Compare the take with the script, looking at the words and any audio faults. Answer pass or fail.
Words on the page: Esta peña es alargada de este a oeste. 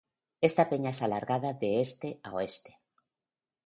pass